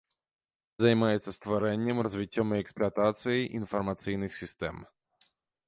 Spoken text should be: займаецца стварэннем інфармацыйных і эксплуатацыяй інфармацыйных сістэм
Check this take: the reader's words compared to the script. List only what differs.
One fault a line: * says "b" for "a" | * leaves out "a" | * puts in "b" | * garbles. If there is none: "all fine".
* says "развіццём" for "інфармацыйных"